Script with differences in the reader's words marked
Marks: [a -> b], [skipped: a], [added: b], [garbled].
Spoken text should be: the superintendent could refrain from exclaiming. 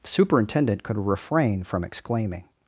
the superintendent could refrain from exclaiming.